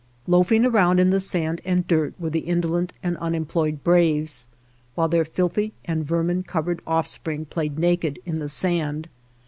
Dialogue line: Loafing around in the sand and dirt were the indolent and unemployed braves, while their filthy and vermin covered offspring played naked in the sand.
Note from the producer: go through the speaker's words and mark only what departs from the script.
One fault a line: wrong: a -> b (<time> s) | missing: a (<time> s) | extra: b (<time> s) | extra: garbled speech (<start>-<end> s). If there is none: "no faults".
no faults